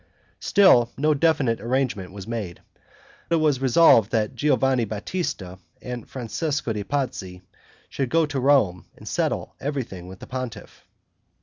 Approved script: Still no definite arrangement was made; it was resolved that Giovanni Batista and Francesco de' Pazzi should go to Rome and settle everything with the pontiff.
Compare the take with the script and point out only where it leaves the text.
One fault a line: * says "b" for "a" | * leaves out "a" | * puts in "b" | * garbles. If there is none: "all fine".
all fine